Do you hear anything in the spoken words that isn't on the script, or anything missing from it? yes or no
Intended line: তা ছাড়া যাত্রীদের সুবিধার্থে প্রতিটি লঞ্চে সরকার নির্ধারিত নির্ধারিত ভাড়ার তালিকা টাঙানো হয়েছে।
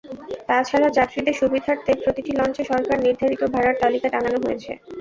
yes